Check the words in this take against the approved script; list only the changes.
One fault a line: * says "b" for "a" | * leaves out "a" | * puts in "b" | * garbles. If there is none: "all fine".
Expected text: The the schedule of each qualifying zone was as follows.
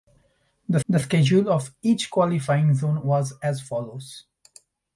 all fine